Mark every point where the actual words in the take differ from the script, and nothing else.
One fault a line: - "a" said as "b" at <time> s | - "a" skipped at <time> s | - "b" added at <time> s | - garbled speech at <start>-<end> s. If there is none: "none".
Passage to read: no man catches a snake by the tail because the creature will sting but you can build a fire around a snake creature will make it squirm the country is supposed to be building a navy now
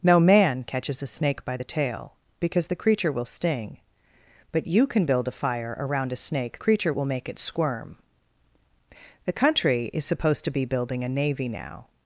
none